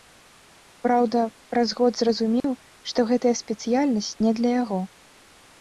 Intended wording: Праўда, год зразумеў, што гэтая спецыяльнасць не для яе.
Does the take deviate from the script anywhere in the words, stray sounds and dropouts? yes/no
yes